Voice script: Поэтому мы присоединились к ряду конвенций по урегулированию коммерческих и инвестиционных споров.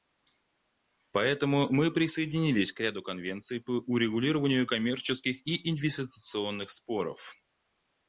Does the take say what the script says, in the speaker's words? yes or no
yes